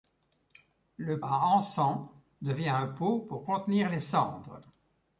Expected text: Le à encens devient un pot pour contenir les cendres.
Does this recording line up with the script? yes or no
yes